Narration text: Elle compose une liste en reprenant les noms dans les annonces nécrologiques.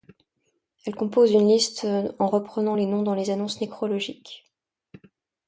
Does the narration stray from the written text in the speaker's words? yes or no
no